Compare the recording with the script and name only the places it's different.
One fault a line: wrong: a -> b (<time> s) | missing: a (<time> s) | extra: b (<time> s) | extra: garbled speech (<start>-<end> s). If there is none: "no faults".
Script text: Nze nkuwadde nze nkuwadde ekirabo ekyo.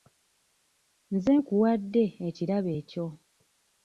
missing: nze nkuwadde (2.0 s)